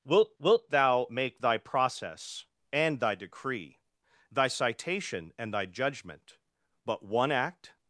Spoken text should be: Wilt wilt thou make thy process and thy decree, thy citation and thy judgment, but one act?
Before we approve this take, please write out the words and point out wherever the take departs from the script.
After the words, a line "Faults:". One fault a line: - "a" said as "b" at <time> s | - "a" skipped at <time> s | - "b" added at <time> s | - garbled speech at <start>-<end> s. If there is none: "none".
Wilt wilt thou make thy process and thy decree, thy citation and thy judgment, but one act?
Faults:
none